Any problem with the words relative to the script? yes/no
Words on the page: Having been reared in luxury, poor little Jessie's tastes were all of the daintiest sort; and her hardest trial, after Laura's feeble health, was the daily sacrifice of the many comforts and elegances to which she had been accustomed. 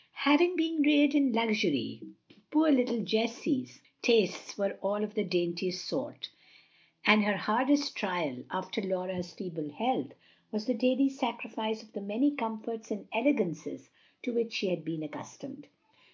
no